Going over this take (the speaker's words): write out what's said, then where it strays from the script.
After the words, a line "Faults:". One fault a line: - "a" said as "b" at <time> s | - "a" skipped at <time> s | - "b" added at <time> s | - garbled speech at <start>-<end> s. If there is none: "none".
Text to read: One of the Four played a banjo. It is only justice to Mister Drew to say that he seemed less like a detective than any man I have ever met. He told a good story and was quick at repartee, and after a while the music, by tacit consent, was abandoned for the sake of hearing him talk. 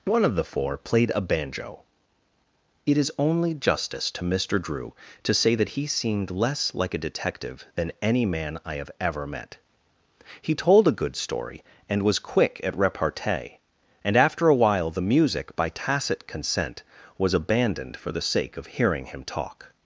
One of the Four played a banjo. It is only justice to Mister Drew to say that he seemed less like a detective than any man I have ever met. He told a good story and was quick at repartee, and after a while the music, by tacit consent, was abandoned for the sake of hearing him talk.
Faults:
none